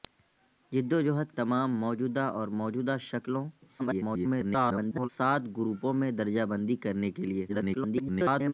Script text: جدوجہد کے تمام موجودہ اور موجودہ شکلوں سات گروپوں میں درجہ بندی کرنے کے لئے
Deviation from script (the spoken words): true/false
true